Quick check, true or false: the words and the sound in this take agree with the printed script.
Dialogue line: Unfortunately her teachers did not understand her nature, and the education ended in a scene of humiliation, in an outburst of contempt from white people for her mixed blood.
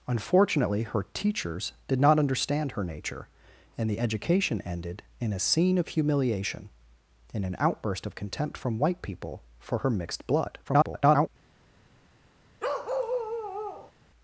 false